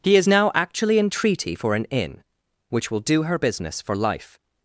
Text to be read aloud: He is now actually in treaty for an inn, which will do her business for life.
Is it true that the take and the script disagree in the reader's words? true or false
false